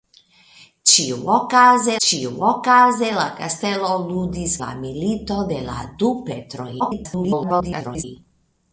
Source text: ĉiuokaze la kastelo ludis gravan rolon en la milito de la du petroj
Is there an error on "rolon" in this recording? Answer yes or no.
yes